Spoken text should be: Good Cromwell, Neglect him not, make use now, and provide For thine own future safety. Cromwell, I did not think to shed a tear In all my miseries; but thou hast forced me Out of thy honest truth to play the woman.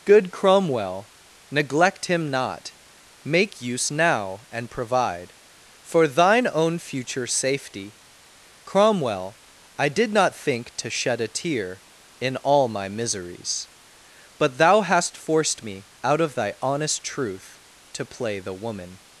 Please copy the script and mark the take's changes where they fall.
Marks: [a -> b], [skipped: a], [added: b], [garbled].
Good Cromwell, Neglect him not, make use now, and provide For thine own future safety. Cromwell, I did not think to shed a tear In all my miseries; but thou hast forced me Out of thy honest truth to play the woman.